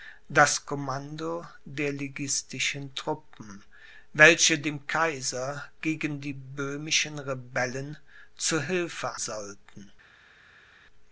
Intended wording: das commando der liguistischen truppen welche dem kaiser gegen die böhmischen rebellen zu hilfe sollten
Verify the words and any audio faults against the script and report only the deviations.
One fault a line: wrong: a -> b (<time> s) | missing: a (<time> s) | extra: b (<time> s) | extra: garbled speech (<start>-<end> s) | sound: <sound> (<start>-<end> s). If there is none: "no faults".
no faults